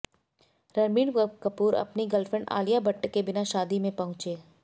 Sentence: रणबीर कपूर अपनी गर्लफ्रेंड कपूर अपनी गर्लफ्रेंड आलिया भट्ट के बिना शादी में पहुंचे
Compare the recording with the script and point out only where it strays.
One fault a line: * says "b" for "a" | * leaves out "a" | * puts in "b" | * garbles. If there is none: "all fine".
* leaves out "कपूर अपनी गर्लफ्रेंड"